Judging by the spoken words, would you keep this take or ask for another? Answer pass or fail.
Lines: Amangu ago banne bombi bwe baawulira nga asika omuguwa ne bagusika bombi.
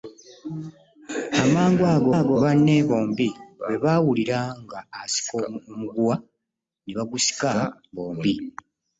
fail